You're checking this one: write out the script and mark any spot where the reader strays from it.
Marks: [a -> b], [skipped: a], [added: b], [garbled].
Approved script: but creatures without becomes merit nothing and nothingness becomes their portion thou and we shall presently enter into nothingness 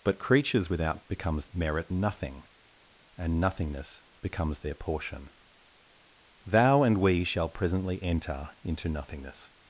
but creatures without becomes merit nothing and nothingness becomes their portion thou and we shall presently enter into nothingness